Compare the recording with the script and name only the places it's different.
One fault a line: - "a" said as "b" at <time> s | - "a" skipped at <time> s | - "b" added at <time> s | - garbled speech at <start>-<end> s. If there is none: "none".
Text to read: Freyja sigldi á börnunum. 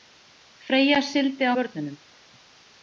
none